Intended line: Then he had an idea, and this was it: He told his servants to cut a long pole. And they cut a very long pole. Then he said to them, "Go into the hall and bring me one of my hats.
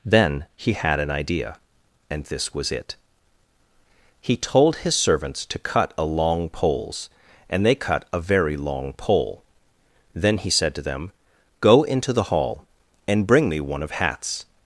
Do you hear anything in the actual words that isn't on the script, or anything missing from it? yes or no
yes